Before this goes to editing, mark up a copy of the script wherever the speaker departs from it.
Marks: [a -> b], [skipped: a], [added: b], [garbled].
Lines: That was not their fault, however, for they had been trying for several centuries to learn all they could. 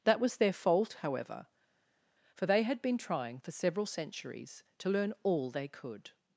That was [skipped: not] their fault, however, for they had been trying for several centuries to learn all they could.